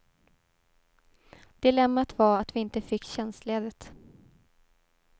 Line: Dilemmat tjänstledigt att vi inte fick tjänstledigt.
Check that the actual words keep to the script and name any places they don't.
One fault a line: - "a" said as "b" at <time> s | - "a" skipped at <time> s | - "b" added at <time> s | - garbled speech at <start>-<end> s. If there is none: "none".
- "tjänstledigt" said as "var" at 2.2 s